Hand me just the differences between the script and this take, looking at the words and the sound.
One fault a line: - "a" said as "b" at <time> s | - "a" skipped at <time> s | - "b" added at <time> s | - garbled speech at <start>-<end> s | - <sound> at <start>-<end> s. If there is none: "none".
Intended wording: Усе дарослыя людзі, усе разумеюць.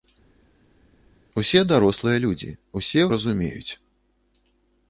none